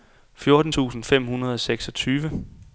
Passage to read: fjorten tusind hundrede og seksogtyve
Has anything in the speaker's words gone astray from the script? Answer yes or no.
yes